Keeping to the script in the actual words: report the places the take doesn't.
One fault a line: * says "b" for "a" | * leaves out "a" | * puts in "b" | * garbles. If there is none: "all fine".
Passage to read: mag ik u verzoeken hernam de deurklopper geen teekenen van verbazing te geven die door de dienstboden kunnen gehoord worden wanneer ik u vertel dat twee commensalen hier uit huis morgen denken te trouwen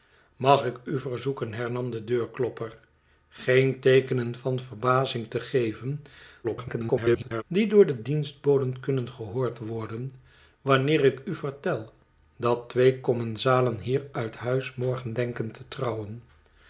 * garbles